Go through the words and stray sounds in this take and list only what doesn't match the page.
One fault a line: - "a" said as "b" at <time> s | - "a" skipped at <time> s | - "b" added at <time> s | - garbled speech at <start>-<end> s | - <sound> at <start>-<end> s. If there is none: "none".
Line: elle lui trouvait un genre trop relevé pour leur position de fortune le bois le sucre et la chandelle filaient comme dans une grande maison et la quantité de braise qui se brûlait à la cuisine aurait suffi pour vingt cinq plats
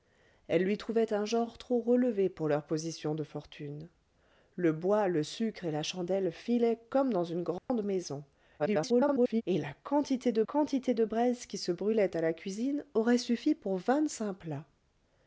- dropout at 7.6-7.7 s
- garbled speech at 8.6-9.4 s
- "quantité de" added at 10.5 s